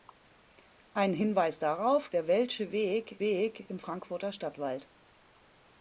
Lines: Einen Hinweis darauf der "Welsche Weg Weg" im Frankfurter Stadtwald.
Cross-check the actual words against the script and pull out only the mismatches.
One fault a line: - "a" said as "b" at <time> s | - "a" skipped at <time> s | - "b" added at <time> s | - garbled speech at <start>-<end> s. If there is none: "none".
none